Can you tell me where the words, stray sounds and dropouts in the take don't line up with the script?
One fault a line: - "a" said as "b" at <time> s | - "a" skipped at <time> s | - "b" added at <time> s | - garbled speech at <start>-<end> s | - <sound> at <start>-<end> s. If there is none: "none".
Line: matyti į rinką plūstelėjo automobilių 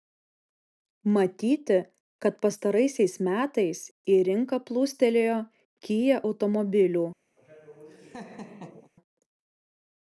- "kad pastaraisiais metais" added at 2.2 s
- "kia" added at 5.9 s
- laugh at 7.4-8.9 s